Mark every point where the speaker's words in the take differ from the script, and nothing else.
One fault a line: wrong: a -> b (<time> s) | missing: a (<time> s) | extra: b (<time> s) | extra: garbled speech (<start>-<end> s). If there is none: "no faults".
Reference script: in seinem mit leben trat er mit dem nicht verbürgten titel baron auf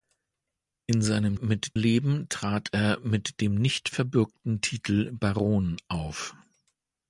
no faults